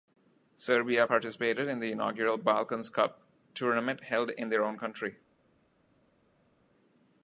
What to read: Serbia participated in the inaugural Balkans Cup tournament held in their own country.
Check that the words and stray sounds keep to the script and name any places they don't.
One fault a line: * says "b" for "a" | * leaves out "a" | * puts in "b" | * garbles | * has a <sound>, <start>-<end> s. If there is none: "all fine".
all fine